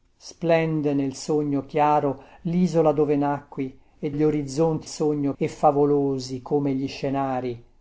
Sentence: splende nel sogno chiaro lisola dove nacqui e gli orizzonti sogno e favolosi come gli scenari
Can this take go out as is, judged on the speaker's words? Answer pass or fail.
pass